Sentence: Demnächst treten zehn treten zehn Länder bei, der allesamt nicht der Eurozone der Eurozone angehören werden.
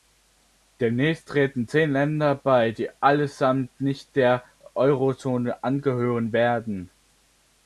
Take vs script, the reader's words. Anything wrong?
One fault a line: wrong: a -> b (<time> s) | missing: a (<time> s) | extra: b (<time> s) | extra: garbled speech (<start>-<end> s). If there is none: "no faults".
missing: treten zehn (1.9 s)
wrong: der -> die (2.7 s)
missing: der Eurozone (5.6 s)